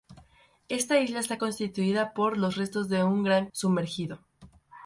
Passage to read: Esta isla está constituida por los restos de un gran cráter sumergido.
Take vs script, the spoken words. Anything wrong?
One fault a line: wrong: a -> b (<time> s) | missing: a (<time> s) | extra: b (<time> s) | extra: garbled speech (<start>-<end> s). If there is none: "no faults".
missing: cráter (3.5 s)